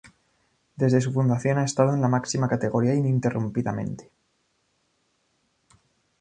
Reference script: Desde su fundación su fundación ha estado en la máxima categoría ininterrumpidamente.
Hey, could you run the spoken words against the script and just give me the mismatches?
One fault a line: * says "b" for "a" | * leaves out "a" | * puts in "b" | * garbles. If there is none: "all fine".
* leaves out "su fundación"